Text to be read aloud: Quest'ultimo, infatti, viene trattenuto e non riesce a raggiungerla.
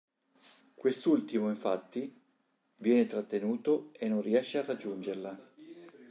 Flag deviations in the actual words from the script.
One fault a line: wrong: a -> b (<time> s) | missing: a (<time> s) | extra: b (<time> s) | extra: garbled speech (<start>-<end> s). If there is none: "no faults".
no faults